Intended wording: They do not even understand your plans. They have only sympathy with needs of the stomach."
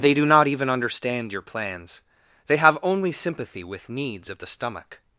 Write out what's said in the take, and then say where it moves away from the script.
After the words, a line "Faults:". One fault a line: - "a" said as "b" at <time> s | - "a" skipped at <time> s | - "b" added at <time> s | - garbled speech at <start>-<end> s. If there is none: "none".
They do not even understand your plans. They have only sympathy with needs of the stomach."
Faults:
none